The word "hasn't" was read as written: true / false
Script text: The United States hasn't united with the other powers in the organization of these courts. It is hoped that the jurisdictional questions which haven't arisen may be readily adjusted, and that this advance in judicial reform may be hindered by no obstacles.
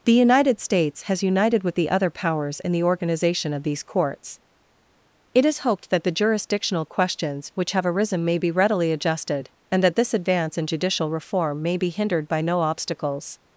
false